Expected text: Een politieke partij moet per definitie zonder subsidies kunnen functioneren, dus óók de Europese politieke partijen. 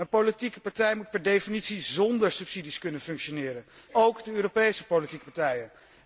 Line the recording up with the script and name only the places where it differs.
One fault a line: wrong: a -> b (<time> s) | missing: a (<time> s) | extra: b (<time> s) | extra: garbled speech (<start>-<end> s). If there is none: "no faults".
missing: dus (3.6 s)